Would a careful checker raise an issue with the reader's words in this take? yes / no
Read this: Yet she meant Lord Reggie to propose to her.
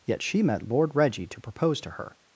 yes